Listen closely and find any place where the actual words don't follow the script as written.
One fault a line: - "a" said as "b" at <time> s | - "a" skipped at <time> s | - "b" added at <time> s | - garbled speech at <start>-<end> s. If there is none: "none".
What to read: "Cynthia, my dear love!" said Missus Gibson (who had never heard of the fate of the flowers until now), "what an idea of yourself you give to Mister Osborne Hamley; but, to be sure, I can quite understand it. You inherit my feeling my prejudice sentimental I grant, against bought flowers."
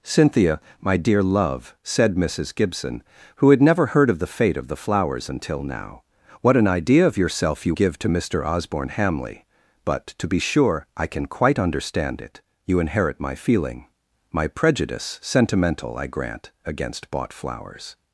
none